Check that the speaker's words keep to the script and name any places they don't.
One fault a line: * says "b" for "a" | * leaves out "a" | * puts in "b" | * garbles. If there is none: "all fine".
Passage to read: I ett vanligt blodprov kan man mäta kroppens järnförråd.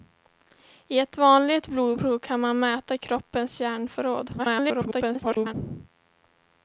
* garbles